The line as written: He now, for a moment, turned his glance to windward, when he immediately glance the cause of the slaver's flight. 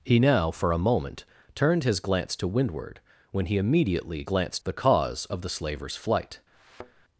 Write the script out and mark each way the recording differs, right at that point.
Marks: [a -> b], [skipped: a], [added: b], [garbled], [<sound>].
He now, for a moment, turned his glance to windward, when he immediately glance the cause of the slaver's flight. [thud]